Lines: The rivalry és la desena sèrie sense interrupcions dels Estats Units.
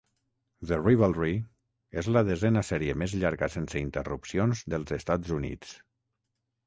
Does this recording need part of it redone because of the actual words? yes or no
yes